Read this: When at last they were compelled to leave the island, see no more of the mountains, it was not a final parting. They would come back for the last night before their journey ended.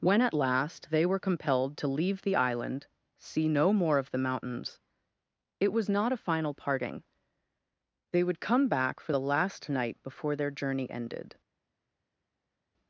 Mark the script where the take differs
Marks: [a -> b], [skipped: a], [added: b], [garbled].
When at last they were compelled to leave the island, see no more of the mountains, it was not a final parting. They would come back for the last night before their journey ended.